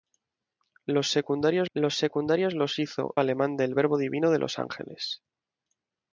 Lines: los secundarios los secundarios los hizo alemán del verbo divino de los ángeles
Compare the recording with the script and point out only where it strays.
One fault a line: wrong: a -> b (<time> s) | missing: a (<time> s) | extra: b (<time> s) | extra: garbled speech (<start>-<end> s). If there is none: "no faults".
no faults